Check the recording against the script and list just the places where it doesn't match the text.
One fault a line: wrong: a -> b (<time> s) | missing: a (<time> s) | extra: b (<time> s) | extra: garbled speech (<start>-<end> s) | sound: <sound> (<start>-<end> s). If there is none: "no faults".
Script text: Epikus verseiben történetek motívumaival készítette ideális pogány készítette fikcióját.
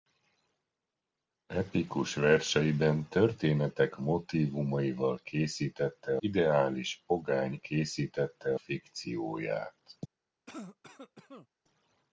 sound: cough (10.5-11.5 s)